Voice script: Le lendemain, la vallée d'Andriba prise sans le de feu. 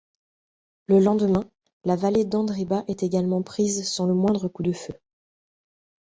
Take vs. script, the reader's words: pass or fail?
fail